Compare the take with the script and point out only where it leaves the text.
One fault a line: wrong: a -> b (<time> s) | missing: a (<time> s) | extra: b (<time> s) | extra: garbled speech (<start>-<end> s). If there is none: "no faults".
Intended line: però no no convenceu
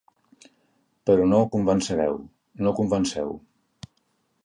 extra: convencereu (1.6 s)